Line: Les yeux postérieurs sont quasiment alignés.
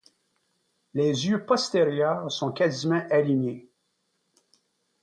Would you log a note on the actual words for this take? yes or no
no